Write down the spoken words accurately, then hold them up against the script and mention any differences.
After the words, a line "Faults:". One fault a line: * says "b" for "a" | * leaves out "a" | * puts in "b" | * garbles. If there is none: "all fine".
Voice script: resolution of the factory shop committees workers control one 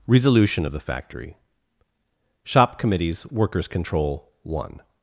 resolution of the factory shop committees workers control one
Faults:
all fine